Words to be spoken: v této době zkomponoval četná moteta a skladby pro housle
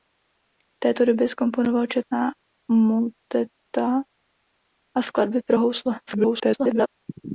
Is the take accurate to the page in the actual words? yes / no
no